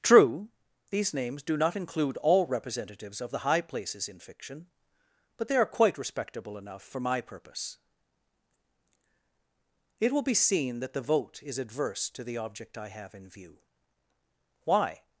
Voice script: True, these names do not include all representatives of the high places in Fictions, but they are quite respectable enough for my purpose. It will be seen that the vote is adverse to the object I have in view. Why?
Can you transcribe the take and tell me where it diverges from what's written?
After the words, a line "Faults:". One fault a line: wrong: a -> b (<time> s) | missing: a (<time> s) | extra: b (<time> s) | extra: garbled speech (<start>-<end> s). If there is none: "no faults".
True, these names do not include all representatives of the high places in Fiction, but they are quite respectable enough for my purpose. It will be seen that the vote is adverse to the object I have in view. Why?
Faults:
wrong: Fictions -> Fiction (4.2 s)